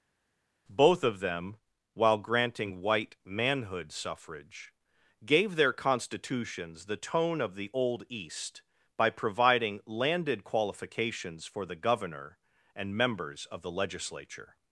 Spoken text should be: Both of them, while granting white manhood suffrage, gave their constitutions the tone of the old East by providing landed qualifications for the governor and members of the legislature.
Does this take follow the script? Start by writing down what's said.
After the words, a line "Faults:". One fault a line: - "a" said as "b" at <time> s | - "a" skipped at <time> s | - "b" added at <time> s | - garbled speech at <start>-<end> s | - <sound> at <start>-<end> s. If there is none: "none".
Both of them, while granting white manhood suffrage, gave their constitutions the tone of the old East by providing landed qualifications for the governor and members of the legislature.
Faults:
none